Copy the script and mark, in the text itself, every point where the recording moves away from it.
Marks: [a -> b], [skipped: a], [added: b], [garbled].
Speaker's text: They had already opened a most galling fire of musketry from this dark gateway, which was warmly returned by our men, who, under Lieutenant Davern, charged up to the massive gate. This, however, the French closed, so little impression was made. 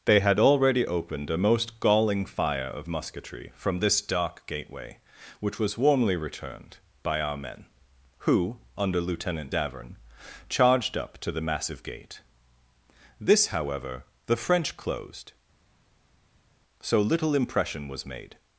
They had already opened a most galling fire of musketry from this dark gateway, which was warmly returned by our men, who, under Lieutenant Davern, charged up to the massive gate. This, however, the French closed, so little impression was made.